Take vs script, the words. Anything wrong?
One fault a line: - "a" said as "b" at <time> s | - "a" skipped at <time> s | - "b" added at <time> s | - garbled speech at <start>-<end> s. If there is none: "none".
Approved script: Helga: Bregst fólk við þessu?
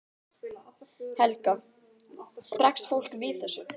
none